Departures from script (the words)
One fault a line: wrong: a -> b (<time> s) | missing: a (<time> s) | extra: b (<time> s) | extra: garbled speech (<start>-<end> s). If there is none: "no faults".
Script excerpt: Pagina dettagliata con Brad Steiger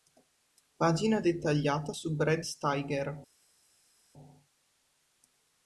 wrong: con -> su (1.9 s)